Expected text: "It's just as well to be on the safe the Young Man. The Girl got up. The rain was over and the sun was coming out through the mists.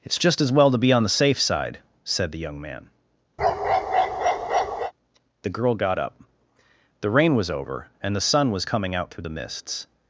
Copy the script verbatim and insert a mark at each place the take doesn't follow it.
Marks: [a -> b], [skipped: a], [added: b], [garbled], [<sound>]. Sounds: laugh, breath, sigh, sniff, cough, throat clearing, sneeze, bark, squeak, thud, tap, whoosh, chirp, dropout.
"It's just as well to be on the safe [added: side said] the Young Man. [bark] The Girl got up. The rain was over and the sun was coming out through the mists.